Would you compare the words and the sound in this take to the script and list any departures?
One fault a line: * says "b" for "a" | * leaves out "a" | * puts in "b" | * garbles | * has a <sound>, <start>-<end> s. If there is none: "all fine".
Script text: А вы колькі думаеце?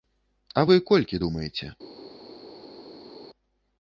all fine